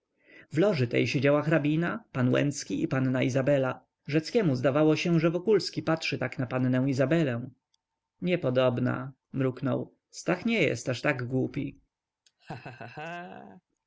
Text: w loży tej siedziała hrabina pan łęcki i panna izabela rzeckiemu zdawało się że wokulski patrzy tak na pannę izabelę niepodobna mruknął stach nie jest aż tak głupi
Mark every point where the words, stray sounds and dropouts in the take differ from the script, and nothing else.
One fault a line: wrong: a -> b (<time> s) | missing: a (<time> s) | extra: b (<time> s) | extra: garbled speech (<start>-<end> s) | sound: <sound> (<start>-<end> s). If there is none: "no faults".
sound: laugh (12.3-13.6 s)